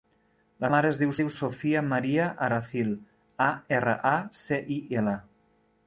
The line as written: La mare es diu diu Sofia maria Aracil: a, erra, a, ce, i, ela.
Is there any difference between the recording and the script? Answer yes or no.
no